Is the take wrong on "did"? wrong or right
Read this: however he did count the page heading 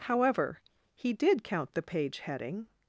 right